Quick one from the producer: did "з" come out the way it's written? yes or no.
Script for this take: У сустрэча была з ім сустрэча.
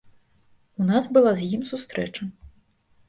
yes